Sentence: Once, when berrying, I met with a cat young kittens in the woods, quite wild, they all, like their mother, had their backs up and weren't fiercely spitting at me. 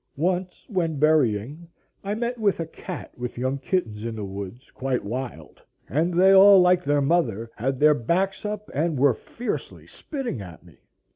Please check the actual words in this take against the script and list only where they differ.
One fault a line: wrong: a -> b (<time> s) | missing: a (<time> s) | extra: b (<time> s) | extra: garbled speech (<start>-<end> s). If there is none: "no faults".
extra: with (3.2 s)
extra: and (5.9 s)
wrong: weren't -> were (9.0 s)